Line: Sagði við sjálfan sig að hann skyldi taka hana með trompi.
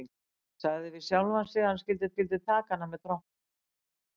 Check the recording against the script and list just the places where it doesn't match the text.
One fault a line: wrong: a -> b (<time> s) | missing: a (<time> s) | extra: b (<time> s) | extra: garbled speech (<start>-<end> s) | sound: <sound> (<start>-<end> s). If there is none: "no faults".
extra: skyldi (2.1 s)